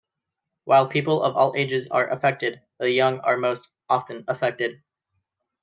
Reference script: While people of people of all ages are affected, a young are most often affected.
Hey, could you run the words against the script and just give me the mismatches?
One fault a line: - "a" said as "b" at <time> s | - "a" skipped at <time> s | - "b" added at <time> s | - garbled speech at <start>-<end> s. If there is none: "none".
- "people of" skipped at 1.4 s
- "a" said as "the" at 2.8 s